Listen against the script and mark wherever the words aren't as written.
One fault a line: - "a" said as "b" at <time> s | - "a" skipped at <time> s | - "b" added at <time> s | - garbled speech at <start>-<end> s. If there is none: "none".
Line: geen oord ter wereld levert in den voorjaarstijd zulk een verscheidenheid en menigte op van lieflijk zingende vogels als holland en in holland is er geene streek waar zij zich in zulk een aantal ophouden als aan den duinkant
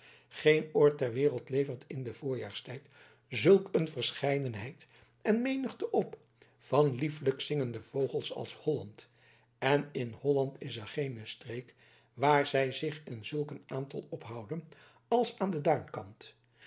none